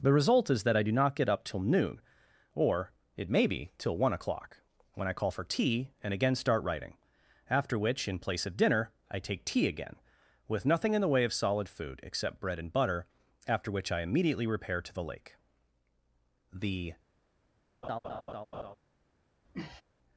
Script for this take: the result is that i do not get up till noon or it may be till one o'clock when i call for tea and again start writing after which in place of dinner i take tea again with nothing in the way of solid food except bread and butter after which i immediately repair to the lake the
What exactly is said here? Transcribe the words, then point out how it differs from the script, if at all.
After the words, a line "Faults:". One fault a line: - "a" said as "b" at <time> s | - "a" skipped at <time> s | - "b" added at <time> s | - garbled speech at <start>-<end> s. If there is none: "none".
the result is that i do not get up till noon or it may be till one o'clock when i call for tea and again start writing after which in place of dinner i take tea again with nothing in the way of solid food except bread and butter after which i immediately repair to the lake the
Faults:
none